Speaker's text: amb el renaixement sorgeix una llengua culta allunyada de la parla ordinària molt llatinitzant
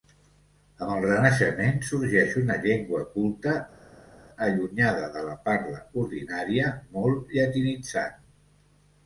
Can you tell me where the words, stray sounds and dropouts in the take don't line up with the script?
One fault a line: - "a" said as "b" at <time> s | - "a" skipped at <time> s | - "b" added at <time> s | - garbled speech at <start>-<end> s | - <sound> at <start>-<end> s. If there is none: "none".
none